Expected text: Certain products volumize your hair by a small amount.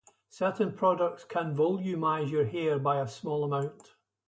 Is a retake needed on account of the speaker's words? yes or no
yes